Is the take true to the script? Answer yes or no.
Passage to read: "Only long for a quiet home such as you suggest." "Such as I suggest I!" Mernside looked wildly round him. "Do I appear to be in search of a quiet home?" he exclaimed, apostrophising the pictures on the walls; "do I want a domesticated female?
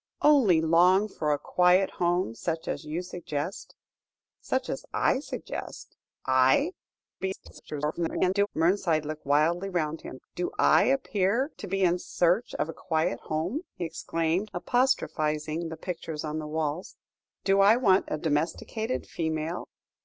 no